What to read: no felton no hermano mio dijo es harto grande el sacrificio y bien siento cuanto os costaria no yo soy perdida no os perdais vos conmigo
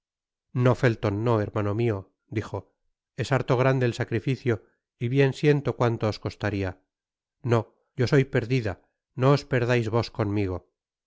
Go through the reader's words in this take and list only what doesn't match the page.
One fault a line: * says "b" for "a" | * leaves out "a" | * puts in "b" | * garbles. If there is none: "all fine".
all fine